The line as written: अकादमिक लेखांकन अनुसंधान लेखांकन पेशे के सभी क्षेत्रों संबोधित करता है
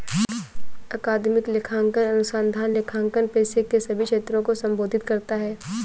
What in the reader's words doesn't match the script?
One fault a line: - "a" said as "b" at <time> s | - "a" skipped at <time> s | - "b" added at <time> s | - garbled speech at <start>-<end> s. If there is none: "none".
- "को" added at 4.4 s